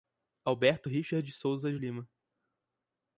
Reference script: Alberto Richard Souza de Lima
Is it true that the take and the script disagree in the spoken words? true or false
false